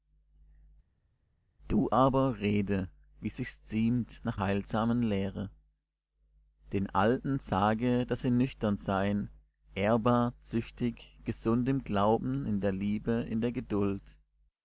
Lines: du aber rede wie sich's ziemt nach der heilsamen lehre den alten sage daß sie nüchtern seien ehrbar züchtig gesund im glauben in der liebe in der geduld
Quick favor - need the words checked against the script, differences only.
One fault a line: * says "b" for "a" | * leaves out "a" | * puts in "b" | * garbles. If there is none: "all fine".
* leaves out "der"